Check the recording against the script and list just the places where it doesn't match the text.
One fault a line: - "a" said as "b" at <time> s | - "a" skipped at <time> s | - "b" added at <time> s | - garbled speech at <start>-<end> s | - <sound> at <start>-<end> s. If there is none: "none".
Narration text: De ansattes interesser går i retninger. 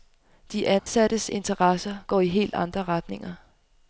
- dropout at 0.8-0.9 s
- "helt andre" added at 2.3 s